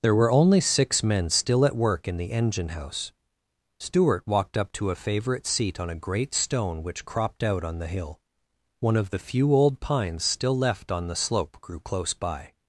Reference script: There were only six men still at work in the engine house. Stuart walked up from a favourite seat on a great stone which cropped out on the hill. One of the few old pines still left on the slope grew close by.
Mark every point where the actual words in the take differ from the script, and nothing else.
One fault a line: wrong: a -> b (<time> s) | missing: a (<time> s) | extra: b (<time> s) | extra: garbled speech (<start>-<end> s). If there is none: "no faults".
wrong: from -> to (4.7 s)